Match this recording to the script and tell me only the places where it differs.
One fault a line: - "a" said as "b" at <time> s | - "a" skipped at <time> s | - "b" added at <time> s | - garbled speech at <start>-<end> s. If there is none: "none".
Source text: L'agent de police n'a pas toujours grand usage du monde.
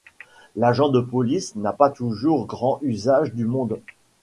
none